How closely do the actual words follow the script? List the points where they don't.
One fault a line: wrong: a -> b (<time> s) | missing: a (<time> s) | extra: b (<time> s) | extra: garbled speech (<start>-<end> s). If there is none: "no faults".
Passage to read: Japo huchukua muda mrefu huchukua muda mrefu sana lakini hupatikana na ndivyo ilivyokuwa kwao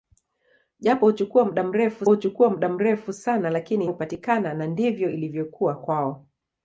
no faults